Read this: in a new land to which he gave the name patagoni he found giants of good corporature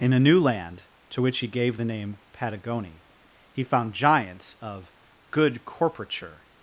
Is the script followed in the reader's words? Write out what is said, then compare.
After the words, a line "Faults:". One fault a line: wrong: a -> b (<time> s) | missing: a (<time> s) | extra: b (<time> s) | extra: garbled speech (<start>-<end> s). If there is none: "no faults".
in a new land to which he gave the name patagoni he found giants of good corporature
Faults:
no faults